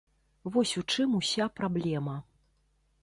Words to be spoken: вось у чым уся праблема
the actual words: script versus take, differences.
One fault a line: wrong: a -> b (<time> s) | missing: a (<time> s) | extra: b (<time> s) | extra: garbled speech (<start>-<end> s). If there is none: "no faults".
no faults